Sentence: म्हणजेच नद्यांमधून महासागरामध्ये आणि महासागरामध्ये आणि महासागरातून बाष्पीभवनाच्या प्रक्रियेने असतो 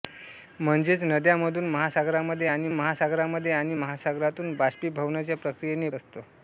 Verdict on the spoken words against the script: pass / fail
pass